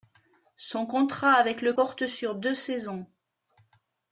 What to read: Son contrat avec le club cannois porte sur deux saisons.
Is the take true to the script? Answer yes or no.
no